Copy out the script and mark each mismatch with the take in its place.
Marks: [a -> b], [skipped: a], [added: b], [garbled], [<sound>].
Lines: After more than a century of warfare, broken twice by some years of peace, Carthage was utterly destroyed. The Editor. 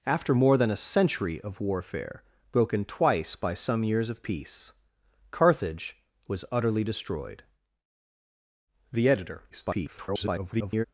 After more than a century of warfare, broken twice by some years of peace, Carthage was utterly destroyed. The Editor. [garbled]